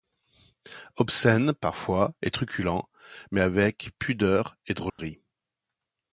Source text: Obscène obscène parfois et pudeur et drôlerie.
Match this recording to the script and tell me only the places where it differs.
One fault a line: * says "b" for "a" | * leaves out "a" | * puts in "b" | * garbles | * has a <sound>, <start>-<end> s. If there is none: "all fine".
* leaves out "obscène"
* puts in "truculent mais avec"
* has a dropout, 4.9-5.0 s